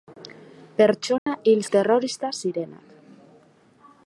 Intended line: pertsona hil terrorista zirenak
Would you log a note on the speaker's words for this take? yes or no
no